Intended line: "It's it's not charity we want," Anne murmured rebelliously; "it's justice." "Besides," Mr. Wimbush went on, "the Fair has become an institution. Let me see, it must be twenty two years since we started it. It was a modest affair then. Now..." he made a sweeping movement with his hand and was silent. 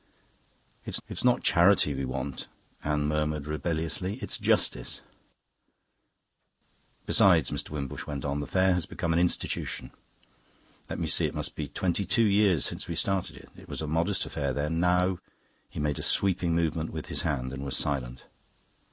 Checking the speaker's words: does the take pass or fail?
pass